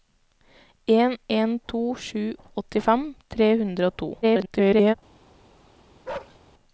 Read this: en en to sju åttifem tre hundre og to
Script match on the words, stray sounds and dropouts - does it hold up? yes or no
no